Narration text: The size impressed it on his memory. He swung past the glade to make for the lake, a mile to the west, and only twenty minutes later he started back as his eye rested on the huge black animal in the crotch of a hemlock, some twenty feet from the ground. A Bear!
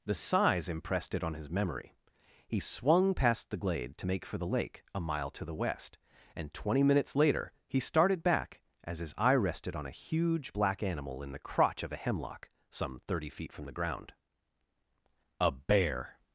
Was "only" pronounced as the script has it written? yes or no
no